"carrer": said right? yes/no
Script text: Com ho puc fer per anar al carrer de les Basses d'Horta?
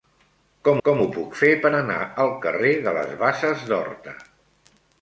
yes